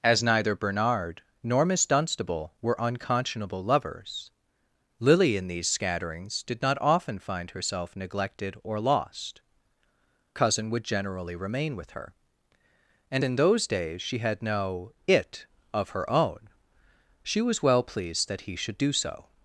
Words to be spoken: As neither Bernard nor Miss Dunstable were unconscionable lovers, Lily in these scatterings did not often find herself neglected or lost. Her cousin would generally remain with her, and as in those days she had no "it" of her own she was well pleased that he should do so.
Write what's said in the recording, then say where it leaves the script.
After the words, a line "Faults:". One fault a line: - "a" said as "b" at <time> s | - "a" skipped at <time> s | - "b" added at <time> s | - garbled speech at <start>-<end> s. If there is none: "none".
As neither Bernard nor Miss Dunstable were unconscionable lovers, Lily in these scatterings did not often find herself neglected or lost. Cousin would generally remain with her, and in those days she had no "it" of her own she was well pleased that he should do so.
Faults:
- "Her" skipped at 9.4 s
- "as" skipped at 13.2 s